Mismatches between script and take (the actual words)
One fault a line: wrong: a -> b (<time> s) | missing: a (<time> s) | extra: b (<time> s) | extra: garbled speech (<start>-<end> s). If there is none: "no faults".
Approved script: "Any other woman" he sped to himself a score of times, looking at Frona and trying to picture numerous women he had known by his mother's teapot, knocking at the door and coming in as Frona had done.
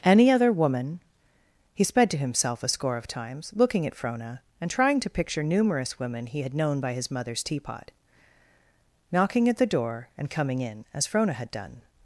no faults